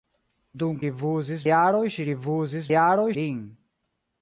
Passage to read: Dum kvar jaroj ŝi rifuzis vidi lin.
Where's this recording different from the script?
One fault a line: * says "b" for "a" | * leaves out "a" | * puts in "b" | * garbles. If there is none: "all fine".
* says "rifuzis" for "kvar"
* says "jaroj" for "vidi"